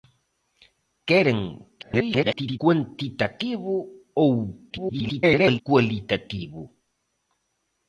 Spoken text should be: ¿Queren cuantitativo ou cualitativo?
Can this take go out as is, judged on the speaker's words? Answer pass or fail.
fail